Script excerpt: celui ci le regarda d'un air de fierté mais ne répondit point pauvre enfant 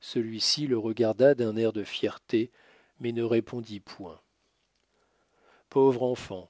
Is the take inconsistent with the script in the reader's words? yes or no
no